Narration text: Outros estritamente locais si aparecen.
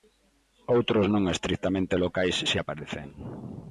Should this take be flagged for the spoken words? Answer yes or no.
yes